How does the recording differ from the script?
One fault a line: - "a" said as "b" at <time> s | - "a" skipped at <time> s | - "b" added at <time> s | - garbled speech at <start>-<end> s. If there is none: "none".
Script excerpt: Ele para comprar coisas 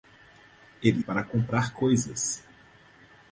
none